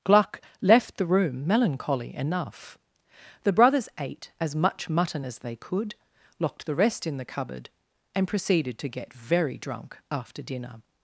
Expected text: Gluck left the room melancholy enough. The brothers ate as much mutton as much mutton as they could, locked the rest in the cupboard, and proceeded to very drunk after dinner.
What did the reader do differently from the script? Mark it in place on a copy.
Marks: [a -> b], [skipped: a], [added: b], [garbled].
Gluck left the room melancholy enough. The brothers ate as much mutton as [skipped: much mutton as] they could, locked the rest in the cupboard, and proceeded to [added: get] very drunk after dinner.